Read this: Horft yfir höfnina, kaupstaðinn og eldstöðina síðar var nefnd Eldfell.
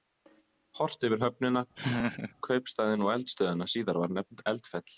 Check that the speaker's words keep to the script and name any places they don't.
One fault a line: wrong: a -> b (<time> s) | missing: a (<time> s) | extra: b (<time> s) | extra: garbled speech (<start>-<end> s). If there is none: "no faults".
no faults